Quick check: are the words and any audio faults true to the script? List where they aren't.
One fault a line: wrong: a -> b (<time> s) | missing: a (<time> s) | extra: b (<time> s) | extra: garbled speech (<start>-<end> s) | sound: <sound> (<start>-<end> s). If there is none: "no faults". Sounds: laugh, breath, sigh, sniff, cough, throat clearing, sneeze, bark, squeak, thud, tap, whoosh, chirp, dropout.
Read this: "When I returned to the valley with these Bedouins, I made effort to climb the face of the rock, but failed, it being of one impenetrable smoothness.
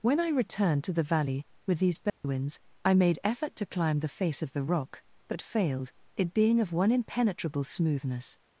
sound: dropout (2.1-2.2 s)